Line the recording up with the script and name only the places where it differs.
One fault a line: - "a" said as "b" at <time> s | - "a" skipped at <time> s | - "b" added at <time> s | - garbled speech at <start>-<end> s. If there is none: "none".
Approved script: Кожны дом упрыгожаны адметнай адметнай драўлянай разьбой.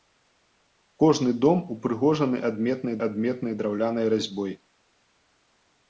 none